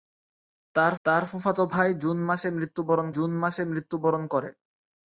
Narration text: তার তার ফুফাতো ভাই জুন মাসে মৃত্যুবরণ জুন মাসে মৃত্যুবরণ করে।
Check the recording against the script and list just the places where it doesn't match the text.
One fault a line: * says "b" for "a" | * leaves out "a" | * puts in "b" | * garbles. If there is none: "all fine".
all fine